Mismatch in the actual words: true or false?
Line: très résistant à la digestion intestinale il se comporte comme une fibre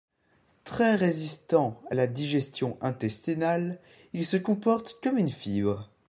false